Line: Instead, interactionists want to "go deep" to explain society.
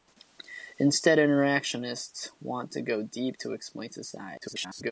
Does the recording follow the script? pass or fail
fail